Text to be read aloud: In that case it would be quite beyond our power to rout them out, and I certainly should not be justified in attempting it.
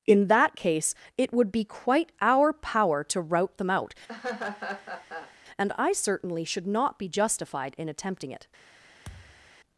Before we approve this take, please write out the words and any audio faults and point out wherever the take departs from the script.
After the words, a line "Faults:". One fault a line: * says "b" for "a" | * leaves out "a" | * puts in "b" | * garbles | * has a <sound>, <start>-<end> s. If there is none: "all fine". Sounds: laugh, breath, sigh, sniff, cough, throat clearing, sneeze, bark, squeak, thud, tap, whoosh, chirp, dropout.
In that case it would be quite our power to rout them out, and I certainly should not be justified in attempting it.
Faults:
* leaves out "beyond"
* has a laugh, 4.1-5.3 s
* has a thud, 9.0-9.5 s